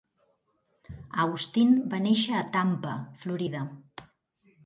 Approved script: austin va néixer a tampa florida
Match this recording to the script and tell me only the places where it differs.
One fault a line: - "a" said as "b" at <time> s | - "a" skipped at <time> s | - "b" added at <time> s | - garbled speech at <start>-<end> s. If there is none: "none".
none